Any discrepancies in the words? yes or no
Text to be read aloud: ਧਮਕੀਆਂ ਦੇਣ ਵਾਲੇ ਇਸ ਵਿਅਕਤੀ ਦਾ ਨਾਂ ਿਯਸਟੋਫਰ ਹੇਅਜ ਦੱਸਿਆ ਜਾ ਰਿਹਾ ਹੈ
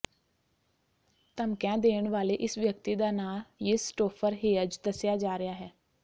no